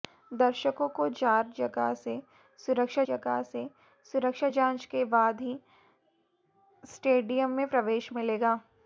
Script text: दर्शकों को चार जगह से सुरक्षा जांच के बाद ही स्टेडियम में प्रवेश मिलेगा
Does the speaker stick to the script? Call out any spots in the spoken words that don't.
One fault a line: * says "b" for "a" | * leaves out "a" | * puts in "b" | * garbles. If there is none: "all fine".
* puts in "जगह से सुरक्षा"